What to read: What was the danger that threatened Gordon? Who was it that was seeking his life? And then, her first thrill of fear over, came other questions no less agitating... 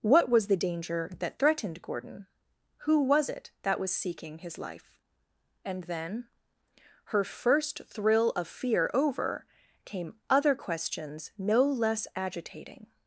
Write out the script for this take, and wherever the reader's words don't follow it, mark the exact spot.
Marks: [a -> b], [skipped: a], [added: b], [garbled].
What was the danger that threatened Gordon? Who was it that was seeking his life? And then, her first thrill of fear over, came other questions no less agitating...